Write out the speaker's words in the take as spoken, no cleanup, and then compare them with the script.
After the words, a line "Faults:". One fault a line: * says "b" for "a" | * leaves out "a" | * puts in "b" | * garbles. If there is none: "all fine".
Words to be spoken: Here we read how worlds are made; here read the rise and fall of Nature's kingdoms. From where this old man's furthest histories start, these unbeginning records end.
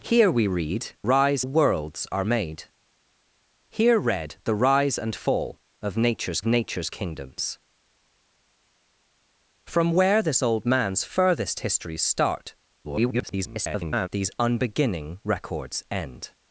Here we read rise worlds are made; here read the rise and fall of Nature's Nature's kingdoms. From where this old man's furthest histories start, [garbled] these unbeginning records end.
Faults:
* says "rise" for "how"
* puts in "Nature's"
* garbles